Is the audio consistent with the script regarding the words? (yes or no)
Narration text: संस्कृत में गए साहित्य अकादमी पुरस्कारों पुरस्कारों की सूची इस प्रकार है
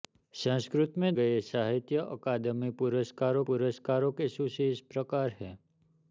yes